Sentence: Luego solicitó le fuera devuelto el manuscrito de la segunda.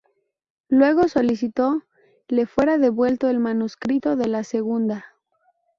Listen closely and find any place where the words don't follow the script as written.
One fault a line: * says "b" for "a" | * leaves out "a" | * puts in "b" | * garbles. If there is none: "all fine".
all fine